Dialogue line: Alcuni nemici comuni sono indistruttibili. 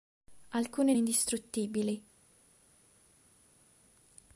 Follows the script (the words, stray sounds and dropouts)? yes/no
no